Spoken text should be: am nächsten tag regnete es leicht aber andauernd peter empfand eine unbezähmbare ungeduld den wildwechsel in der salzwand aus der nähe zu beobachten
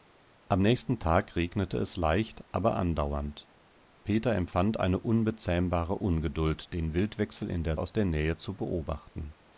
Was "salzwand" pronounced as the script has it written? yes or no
no